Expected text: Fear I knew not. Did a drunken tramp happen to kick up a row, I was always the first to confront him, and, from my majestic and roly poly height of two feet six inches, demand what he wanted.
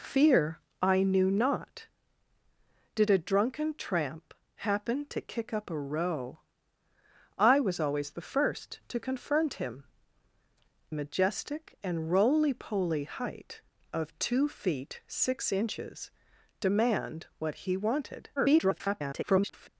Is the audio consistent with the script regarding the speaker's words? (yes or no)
no